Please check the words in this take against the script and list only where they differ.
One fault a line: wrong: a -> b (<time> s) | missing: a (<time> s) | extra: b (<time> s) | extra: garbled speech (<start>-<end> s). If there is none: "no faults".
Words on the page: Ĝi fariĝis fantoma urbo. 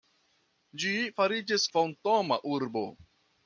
no faults